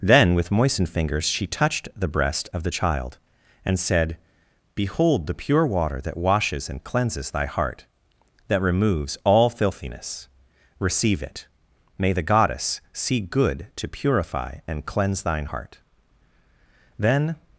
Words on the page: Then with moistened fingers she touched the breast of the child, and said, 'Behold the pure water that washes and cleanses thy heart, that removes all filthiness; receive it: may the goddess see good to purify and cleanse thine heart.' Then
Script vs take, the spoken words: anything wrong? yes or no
no